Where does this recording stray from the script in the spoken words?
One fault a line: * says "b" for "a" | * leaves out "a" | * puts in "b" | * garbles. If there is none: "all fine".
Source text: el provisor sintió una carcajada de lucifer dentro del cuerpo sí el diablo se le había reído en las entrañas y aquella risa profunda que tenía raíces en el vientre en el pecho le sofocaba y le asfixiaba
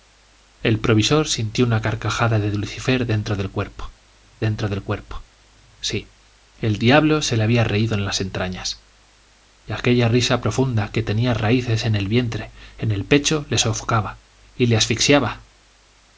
* puts in "dentro del cuerpo"